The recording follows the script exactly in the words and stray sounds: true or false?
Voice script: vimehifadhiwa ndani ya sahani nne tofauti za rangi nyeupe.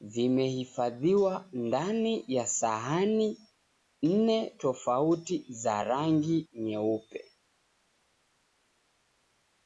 true